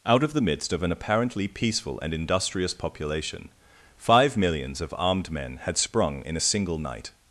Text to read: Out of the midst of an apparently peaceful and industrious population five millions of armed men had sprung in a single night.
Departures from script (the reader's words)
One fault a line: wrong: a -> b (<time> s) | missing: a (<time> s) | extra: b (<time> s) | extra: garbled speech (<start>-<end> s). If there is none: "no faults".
no faults